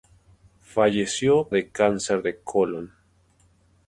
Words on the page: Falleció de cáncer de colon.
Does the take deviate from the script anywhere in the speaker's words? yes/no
no